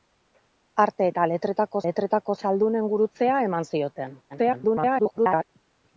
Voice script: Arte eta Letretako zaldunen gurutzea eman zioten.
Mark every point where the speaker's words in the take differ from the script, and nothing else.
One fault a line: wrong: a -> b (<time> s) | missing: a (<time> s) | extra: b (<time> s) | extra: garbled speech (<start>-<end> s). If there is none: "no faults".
extra: Letretako (1.9 s)
extra: garbled speech (4.3-5.4 s)